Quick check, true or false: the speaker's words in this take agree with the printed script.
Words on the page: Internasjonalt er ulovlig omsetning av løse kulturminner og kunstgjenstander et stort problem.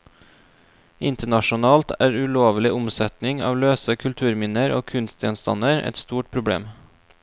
true